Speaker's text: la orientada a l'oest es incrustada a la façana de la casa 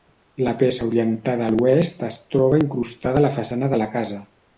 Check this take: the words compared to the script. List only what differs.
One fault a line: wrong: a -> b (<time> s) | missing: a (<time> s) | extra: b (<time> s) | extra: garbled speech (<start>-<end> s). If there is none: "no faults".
extra: peça (0.6 s)
extra: troba (2.4 s)